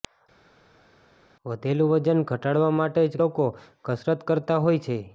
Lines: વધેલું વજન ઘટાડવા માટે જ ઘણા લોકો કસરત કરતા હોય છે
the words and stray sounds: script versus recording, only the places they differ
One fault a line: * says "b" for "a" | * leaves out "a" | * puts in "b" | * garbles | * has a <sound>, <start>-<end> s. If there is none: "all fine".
* leaves out "ઘણા"